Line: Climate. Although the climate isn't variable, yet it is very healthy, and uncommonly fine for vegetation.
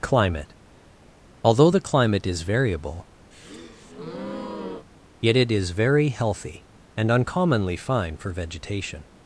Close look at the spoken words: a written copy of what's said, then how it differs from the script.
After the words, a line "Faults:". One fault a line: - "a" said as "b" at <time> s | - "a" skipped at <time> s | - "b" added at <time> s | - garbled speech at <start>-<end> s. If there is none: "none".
Climate. Although the climate is variable, yet it is very healthy, and uncommonly fine for vegetation.
Faults:
- "isn't" said as "is" at 2.3 s